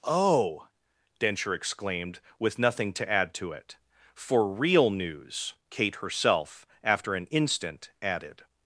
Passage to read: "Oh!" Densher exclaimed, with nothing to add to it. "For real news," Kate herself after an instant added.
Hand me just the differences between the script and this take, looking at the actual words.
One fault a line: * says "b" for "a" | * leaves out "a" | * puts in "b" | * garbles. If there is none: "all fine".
all fine